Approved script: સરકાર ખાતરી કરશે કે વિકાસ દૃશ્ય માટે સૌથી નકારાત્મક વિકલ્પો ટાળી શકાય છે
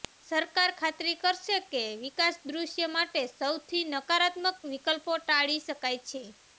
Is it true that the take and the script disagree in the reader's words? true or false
false